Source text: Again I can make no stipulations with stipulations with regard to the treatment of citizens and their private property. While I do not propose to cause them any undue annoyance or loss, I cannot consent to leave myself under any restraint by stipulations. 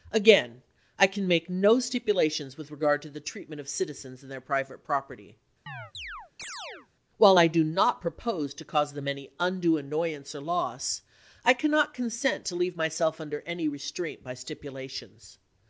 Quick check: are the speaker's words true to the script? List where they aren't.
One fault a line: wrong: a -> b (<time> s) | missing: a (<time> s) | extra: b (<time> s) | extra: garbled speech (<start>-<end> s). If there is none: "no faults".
missing: stipulations with (2.7 s)